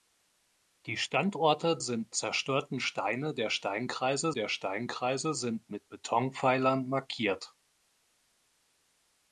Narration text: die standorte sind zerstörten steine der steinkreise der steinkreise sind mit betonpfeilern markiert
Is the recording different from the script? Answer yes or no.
no